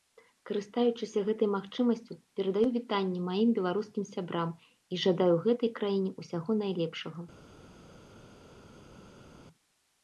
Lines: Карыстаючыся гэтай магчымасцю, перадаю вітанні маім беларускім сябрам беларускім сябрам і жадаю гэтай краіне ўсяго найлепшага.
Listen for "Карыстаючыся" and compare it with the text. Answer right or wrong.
right